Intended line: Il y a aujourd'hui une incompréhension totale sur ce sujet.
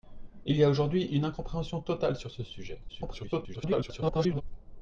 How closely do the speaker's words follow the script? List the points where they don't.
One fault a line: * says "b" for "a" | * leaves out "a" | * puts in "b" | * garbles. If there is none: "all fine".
* garbles